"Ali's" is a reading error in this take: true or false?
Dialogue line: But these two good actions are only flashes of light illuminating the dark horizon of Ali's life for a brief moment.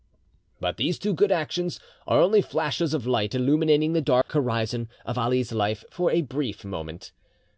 false